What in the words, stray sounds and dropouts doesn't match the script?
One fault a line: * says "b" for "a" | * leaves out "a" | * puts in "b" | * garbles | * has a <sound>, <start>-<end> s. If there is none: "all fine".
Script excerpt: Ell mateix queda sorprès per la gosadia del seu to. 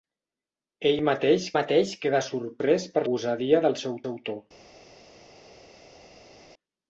* puts in "mateix"
* leaves out "la"
* puts in "seu"